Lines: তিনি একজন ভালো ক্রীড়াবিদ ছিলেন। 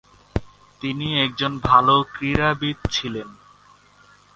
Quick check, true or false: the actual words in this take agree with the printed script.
true